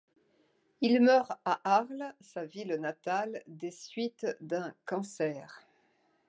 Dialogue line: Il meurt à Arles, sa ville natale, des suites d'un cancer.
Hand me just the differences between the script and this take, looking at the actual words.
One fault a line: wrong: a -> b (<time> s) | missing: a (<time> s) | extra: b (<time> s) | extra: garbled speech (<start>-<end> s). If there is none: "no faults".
no faults